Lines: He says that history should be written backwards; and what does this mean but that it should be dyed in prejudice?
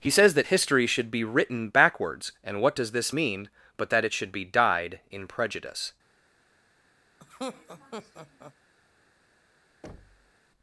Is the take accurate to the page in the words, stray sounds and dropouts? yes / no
no